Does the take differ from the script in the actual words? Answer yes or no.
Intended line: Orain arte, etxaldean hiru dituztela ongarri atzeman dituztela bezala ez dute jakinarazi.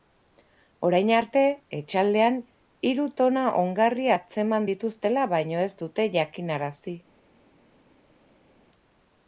yes